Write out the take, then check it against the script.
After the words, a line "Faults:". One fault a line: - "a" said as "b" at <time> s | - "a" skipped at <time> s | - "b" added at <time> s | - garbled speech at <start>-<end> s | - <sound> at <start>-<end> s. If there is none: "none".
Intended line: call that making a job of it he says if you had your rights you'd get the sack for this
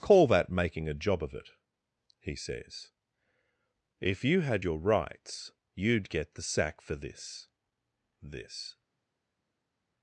call that making a job of it he says if you had your rights you'd get the sack for this this
Faults:
- "this" added at 8.2 s